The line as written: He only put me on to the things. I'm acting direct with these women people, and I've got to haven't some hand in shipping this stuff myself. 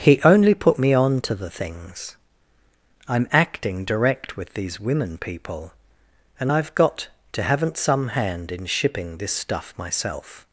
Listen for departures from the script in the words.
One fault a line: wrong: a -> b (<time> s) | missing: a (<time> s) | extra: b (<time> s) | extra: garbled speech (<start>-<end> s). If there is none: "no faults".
no faults